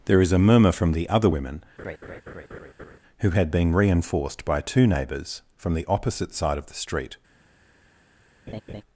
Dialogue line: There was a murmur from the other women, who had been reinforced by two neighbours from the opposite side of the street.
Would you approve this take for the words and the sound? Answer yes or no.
no